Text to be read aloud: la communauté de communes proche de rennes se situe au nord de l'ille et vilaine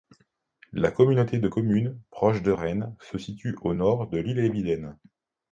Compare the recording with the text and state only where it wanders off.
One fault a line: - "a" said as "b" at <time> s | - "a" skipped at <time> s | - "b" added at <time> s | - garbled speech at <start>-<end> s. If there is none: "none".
none